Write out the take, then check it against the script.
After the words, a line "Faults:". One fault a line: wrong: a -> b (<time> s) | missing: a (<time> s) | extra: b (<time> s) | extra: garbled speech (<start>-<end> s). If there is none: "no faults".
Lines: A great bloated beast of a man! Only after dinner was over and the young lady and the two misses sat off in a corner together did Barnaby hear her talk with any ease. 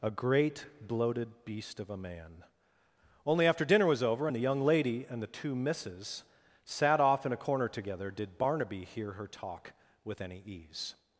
A great bloated beast of a man! Only after dinner was over and the young lady and the two misses sat off in a corner together did Barnaby hear her talk with any ease.
Faults:
no faults